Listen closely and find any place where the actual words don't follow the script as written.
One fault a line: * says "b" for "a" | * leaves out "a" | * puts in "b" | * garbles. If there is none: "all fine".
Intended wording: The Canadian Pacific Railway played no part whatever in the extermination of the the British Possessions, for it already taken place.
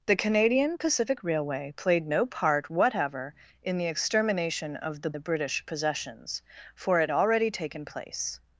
all fine